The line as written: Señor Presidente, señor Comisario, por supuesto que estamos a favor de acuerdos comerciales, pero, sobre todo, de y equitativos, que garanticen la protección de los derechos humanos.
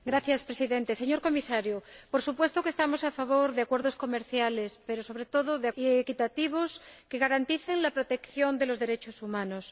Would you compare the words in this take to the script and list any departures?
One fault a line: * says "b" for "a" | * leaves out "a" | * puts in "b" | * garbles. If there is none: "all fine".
all fine